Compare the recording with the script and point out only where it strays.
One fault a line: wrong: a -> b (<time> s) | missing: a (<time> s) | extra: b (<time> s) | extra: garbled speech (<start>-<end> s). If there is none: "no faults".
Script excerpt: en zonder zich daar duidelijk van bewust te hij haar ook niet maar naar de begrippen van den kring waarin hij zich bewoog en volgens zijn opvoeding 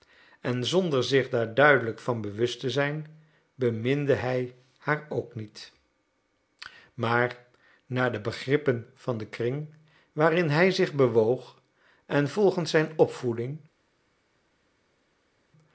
extra: zijn beminde (2.7 s)